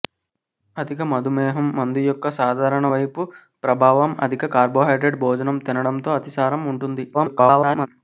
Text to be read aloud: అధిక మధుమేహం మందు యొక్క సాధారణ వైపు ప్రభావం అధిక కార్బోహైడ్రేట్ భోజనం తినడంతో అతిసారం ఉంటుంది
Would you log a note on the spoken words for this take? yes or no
yes